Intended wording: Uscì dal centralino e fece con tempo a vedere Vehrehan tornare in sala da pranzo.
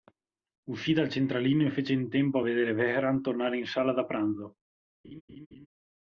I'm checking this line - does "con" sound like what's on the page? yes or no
no